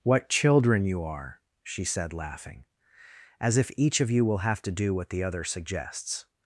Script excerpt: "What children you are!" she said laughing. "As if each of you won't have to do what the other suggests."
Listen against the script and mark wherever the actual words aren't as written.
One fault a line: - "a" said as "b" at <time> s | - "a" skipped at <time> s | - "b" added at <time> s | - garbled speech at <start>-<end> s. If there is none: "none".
- "won't" said as "will" at 4.2 s